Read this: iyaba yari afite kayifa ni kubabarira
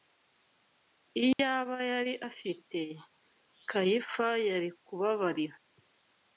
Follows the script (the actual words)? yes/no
no